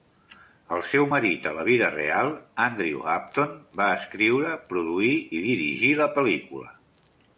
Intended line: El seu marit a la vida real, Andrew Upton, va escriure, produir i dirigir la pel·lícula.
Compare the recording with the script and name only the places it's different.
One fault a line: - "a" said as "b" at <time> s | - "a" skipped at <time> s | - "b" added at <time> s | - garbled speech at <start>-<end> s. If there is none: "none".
none